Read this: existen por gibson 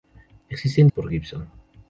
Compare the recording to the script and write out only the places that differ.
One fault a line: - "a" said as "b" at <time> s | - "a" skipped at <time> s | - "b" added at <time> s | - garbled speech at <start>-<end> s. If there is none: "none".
none